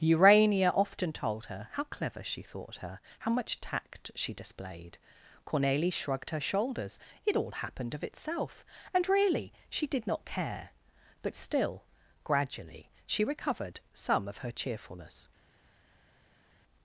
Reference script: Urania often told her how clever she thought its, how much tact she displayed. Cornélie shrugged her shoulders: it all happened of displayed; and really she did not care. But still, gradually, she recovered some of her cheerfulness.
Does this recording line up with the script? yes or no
no